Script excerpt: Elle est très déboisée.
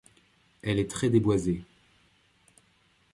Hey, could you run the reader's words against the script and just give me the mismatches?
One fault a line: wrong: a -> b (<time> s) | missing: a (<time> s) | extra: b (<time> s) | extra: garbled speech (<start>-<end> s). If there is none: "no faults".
no faults